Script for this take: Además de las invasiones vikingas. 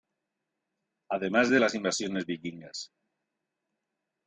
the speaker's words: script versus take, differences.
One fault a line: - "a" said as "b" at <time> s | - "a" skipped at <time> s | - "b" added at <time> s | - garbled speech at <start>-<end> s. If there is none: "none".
none